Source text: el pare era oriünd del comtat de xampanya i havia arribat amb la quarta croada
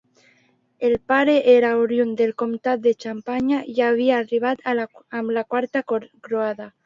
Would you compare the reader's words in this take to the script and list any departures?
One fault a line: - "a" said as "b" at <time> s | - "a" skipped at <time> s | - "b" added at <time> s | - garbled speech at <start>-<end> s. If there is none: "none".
none